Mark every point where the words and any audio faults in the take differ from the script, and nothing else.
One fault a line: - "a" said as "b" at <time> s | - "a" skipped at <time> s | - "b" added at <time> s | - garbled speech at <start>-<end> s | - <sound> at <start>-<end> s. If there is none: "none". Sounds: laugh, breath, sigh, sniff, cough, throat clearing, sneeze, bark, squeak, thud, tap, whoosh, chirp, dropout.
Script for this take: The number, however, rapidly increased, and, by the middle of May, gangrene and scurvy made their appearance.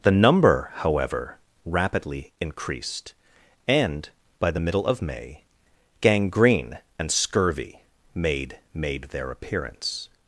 - "made" added at 8.7 s